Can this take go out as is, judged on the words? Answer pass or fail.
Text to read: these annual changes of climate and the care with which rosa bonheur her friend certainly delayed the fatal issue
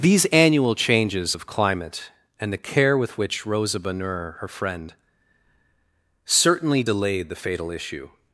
pass